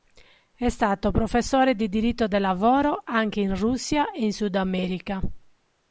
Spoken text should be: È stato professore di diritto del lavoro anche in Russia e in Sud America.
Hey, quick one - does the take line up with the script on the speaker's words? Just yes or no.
yes